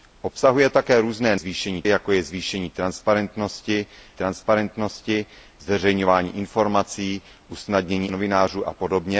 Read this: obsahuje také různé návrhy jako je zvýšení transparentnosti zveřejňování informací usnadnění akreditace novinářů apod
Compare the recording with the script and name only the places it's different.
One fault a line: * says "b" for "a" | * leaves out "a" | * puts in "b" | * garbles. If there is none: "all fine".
* says "zvýšení" for "návrhy"
* puts in "transparentnosti"
* leaves out "akreditace"